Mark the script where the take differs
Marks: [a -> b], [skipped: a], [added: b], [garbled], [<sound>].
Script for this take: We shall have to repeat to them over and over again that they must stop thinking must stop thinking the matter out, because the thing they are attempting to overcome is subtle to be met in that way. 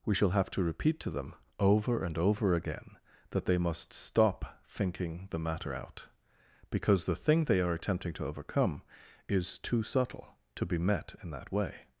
We shall have to repeat to them over and over again that they must stop thinking [skipped: must stop thinking] the matter out, because the thing they are attempting to overcome is [added: too] subtle to be met in that way.